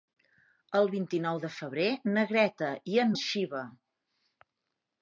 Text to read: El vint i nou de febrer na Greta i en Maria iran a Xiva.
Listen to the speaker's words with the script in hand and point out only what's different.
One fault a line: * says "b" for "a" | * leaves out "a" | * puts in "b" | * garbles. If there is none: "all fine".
* leaves out "Maria iran"